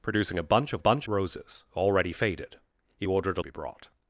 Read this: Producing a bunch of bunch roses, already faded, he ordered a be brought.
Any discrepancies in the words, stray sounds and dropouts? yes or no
no